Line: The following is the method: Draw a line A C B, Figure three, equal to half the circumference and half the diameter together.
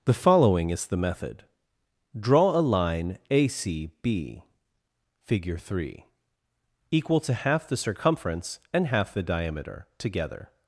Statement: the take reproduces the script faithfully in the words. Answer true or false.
true